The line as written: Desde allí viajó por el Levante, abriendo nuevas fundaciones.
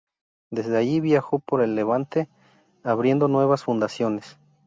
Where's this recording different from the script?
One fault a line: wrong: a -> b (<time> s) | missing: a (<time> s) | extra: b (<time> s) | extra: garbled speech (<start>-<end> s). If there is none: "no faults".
no faults